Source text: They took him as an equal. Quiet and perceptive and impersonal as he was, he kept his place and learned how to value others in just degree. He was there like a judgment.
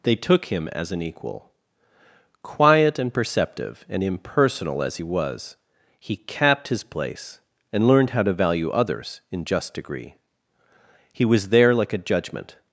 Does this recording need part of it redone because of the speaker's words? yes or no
yes